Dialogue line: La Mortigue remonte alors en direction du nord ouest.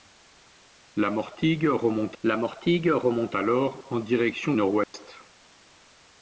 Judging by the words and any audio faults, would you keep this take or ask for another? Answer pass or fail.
fail